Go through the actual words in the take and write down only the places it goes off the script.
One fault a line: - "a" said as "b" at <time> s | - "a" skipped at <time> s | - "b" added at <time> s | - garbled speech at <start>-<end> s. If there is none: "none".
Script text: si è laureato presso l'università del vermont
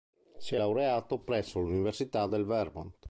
none